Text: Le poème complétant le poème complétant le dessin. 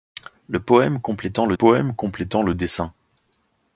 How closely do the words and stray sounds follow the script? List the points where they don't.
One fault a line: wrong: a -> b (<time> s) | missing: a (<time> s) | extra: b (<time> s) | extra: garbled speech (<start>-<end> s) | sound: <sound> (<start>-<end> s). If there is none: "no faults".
no faults